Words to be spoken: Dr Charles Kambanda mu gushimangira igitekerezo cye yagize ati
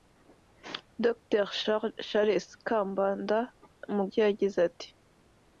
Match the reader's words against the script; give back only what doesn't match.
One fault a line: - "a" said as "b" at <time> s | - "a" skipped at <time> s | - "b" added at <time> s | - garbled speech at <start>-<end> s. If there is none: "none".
- "gushimangira igitekerezo" skipped at 4.0 s